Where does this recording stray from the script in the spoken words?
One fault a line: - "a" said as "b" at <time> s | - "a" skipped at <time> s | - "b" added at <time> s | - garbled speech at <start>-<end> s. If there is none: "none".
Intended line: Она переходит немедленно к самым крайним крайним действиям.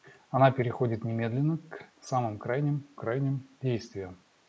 none